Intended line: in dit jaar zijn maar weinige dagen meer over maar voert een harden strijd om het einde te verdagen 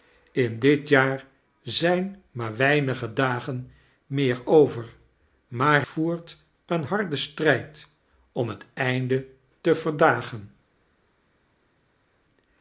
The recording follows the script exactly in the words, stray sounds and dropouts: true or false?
true